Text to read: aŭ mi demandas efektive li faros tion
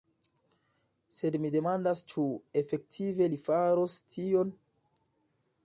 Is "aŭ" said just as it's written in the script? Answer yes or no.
no